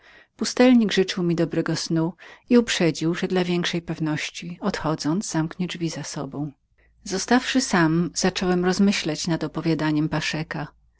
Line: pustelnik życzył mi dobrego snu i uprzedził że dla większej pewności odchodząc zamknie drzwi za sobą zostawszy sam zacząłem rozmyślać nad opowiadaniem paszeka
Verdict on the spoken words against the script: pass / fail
pass